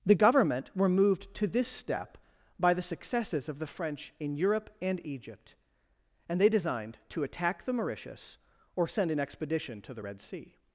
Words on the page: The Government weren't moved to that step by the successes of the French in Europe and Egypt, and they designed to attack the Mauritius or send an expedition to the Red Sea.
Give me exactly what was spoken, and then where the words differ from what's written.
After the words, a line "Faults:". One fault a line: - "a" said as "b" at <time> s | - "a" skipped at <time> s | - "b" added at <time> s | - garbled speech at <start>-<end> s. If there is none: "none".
The Government were moved to this step by the successes of the French in Europe and Egypt, and they designed to attack the Mauritius or send an expedition to the Red Sea.
Faults:
- "weren't" said as "were" at 0.8 s
- "that" said as "this" at 1.5 s